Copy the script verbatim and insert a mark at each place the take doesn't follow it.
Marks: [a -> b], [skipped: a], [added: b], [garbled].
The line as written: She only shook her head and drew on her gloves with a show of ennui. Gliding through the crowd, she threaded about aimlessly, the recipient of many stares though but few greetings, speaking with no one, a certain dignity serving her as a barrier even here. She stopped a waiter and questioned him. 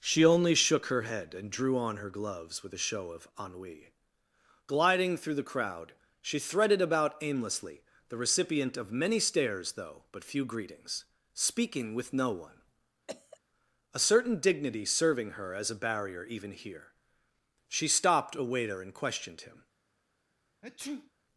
She only shook her head and drew on her gloves with a show of ennui. Gliding through the crowd, she threaded about aimlessly, the recipient of many stares though but few greetings, speaking with no one, a certain dignity serving her as a barrier even here. She stopped a waiter and questioned him.